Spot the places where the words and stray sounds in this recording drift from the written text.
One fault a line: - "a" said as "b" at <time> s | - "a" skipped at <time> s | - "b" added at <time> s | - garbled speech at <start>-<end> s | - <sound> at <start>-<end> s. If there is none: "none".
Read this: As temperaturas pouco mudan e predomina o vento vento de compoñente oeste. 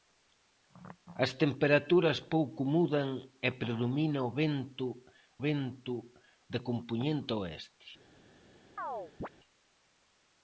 - chirp at 8.8-9.3 s